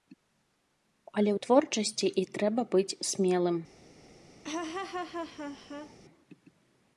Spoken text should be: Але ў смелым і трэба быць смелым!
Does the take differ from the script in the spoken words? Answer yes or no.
yes